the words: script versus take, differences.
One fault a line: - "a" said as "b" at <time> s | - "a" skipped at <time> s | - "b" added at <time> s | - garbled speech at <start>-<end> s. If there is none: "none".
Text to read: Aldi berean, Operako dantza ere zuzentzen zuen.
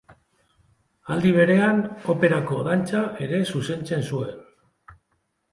none